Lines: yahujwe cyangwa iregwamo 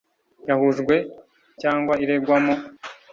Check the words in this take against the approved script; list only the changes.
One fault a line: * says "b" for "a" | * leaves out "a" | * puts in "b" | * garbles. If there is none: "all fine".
all fine